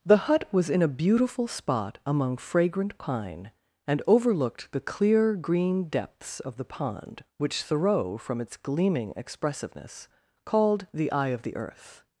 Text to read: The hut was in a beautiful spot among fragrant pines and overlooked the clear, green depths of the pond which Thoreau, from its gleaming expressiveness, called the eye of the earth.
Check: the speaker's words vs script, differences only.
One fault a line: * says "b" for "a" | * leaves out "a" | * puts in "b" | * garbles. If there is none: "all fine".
* says "pine" for "pines"